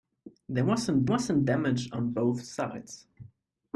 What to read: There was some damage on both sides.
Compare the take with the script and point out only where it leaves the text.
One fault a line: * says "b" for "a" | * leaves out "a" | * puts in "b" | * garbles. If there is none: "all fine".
* puts in "was some"